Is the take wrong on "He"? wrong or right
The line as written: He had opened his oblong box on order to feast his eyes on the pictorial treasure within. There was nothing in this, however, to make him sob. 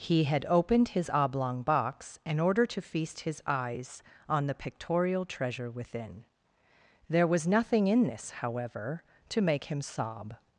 right